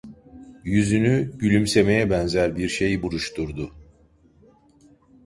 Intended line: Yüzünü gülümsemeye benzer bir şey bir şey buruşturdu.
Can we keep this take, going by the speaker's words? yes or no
no